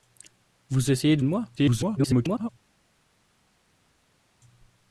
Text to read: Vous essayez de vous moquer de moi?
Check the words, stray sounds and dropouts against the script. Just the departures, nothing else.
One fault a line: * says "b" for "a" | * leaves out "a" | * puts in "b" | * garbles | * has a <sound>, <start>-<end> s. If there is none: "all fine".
* leaves out "vous moquer"
* garbles